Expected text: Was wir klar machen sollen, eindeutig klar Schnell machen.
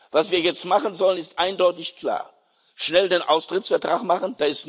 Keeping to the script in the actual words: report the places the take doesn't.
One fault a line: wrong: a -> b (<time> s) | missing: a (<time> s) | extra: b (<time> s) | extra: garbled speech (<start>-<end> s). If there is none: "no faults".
wrong: klar -> jetzt (0.4 s)
extra: ist (1.2 s)
extra: den Austrittsvertrag (3.1 s)